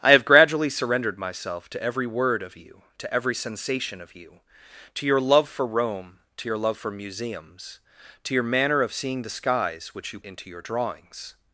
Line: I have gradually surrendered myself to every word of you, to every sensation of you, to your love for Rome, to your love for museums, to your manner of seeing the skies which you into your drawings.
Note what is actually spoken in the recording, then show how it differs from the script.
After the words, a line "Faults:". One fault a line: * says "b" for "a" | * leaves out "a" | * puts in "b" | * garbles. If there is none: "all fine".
I have gradually surrendered myself to every word of you, to every sensation of you, to your love for Rome, to your love for museums, to your manner of seeing the skies which you into your drawings.
Faults:
all fine